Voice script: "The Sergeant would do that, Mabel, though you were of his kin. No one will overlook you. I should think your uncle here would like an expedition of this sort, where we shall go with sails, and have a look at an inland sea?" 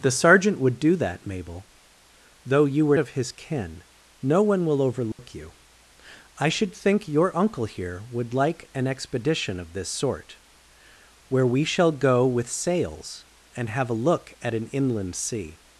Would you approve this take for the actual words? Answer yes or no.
yes